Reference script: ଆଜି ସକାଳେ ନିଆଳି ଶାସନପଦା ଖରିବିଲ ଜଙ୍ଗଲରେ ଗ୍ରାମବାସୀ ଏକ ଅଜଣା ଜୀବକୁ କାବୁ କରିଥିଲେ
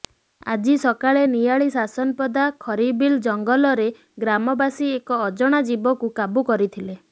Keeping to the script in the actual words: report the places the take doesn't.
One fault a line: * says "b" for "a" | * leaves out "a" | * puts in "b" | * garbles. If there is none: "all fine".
all fine